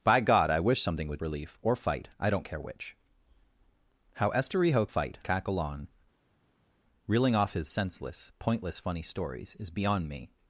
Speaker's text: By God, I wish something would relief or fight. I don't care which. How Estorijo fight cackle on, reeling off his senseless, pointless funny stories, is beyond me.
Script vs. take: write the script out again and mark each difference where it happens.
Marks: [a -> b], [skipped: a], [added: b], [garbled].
By God, I wish something would relief or fight. I don't care which. How Estorijo fight cackle on, reeling off his senseless, pointless funny stories, is beyond me.